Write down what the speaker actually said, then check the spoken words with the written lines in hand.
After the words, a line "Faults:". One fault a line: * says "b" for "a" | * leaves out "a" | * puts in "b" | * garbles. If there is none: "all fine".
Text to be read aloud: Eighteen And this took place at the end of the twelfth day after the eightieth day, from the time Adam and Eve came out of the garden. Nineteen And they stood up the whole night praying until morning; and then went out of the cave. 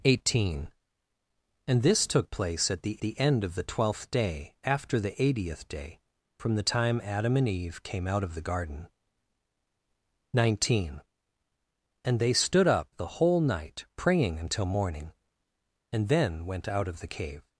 Eighteen And this took place at the the end of the twelfth day after the eightieth day, from the time Adam and Eve came out of the garden. Nineteen And they stood up the whole night praying until morning; and then went out of the cave.
Faults:
* puts in "the"